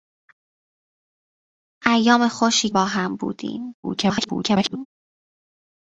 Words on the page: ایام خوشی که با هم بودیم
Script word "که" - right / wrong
wrong